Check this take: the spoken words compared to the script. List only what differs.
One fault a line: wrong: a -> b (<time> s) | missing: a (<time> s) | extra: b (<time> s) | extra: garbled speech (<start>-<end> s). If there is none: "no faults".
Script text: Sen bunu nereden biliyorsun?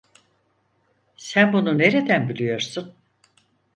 no faults